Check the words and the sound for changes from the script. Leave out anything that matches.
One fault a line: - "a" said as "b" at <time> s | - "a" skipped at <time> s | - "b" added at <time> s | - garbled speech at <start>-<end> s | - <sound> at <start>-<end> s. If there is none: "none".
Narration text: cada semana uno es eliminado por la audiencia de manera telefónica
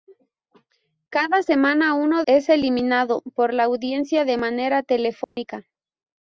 - dropout at 5.2-5.4 s